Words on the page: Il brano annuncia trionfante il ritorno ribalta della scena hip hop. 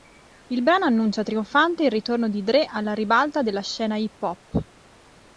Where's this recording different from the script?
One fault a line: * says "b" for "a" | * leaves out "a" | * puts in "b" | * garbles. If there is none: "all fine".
* puts in "di Dre alla"